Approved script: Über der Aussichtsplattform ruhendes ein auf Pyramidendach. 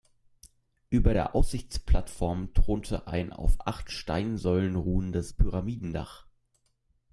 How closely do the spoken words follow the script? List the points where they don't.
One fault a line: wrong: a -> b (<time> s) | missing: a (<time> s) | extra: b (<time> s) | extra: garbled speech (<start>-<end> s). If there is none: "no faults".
wrong: ruhendes -> thronte (2.5 s)
extra: acht Steinsäulen ruhendes (3.6 s)